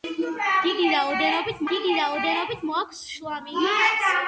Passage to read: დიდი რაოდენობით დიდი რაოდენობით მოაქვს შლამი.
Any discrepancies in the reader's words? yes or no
no